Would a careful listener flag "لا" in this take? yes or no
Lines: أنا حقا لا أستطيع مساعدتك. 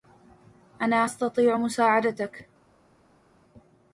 yes